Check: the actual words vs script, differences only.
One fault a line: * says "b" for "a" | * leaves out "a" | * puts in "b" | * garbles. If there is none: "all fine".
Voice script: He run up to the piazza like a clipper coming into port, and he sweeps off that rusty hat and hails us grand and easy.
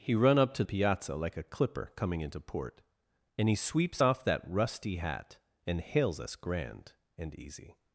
* leaves out "the"